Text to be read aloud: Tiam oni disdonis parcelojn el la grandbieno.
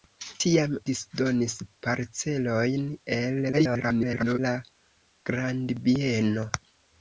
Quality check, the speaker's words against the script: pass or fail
fail